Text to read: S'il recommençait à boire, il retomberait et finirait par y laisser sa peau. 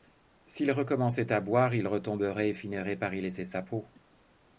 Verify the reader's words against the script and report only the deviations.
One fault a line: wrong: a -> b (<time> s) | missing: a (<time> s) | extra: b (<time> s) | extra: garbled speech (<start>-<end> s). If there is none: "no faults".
no faults